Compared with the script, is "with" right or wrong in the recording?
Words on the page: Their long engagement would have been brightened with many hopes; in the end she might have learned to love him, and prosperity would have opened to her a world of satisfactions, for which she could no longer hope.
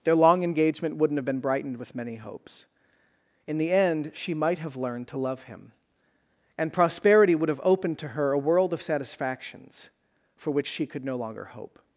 right